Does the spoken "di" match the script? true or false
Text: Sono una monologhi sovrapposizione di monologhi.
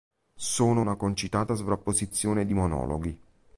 true